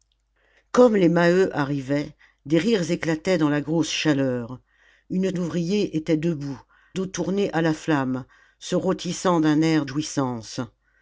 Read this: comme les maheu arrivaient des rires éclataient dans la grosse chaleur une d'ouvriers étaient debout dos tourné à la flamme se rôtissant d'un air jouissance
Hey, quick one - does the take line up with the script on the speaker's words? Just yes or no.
yes